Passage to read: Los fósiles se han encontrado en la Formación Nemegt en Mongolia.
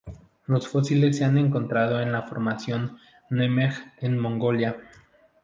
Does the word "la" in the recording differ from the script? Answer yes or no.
no